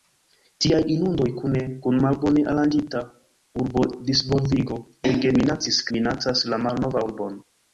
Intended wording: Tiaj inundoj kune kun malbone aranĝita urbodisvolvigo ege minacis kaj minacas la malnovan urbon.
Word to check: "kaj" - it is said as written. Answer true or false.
false